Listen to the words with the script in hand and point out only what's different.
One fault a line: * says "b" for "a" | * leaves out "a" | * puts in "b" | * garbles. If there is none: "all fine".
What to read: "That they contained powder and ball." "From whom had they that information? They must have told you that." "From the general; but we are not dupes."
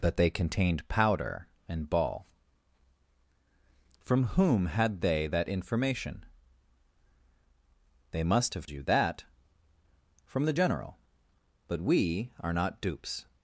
* leaves out "told"